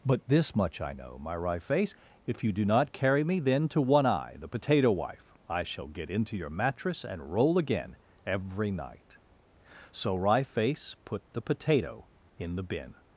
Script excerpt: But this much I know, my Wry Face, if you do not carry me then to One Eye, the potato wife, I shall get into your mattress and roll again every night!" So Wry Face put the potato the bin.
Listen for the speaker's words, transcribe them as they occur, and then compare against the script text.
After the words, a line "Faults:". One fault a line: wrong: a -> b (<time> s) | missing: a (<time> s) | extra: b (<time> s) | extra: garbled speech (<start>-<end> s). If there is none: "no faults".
But this much I know, my Wry Face, if you do not carry me then to One Eye, the potato wife, I shall get into your mattress and roll again every night!" So Wry Face put the potato in the bin.
Faults:
extra: in (12.4 s)